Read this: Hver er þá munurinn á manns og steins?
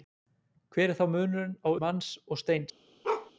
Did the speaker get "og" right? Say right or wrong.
right